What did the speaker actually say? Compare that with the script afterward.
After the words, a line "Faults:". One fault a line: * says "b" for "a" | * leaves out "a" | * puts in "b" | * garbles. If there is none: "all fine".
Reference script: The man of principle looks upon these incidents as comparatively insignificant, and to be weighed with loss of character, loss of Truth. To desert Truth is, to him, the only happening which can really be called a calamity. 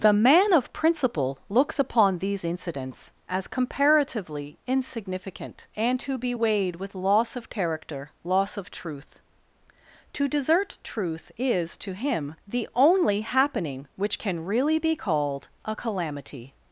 The man of principle looks upon these incidents as comparatively insignificant, and to be weighed with loss of character, loss of Truth. To desert Truth is, to him, the only happening which can really be called a calamity.
Faults:
all fine